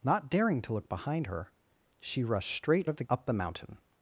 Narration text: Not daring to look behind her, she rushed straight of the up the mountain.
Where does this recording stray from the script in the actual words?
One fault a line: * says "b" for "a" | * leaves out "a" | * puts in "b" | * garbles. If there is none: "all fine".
all fine